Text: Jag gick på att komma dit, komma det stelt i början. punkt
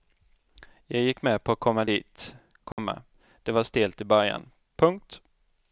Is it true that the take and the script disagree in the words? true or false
true